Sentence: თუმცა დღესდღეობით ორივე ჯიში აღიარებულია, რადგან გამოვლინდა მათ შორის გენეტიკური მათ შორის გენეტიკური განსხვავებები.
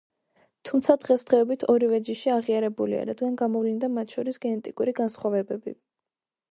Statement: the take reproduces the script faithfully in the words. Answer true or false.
false